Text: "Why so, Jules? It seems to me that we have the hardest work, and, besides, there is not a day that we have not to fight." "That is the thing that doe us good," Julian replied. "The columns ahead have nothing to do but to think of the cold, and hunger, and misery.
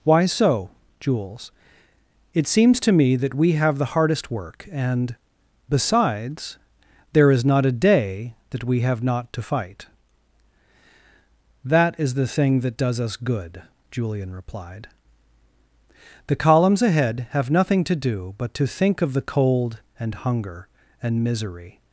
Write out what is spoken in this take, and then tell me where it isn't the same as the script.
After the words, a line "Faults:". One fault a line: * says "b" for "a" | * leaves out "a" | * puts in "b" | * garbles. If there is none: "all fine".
"Why so, Jules? It seems to me that we have the hardest work, and, besides, there is not a day that we have not to fight." "That is the thing that does us good," Julian replied. "The columns ahead have nothing to do but to think of the cold, and hunger, and misery.
Faults:
* says "does" for "doe"